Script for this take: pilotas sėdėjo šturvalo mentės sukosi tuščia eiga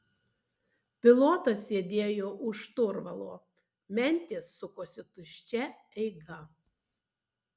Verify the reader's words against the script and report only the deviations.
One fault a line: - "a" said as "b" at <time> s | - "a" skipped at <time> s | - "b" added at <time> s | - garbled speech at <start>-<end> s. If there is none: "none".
- "už" added at 2.5 s